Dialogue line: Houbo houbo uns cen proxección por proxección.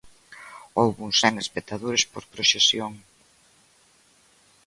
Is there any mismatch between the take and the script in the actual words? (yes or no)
yes